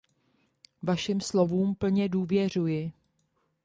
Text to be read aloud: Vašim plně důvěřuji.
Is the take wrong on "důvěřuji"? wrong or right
right